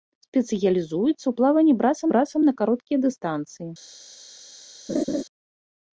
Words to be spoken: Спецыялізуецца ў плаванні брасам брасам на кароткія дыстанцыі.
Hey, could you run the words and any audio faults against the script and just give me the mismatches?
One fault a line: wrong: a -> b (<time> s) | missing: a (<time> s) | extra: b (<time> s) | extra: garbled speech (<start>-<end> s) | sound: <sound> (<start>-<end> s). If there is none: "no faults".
sound: laugh (4.9-5.2 s)